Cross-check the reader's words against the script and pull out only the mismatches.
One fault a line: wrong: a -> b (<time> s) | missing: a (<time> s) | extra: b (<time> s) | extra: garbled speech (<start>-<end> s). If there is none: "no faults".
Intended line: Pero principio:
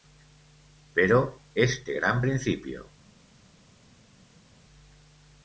extra: este gran (1.5 s)